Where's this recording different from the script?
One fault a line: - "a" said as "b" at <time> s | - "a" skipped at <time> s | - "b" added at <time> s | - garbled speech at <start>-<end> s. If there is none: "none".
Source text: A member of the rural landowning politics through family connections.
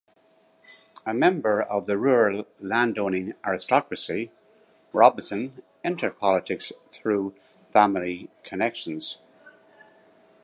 - "aristocracy Robinson entered" added at 3.5 s